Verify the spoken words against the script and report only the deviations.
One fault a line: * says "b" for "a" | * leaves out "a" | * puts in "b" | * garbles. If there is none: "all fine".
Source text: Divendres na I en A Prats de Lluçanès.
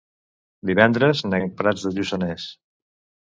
all fine